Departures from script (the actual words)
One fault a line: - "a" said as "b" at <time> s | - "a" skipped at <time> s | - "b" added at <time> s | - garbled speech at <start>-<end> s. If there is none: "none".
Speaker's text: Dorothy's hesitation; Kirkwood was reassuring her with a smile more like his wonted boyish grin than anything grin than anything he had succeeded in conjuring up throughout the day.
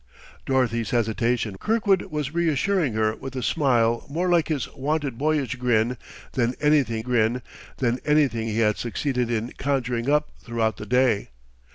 none